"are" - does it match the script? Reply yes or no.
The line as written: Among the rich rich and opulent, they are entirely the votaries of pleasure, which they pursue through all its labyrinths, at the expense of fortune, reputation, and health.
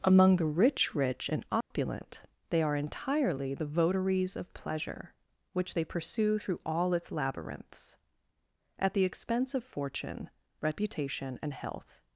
yes